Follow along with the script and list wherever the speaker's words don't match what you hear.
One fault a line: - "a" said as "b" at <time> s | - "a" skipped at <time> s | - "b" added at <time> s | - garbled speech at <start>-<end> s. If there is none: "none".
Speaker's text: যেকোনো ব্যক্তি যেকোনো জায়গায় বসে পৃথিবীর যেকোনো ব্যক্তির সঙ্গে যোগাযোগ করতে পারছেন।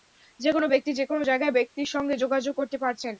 - "বসে পৃথিবীর যেকোনো" skipped at 1.6 s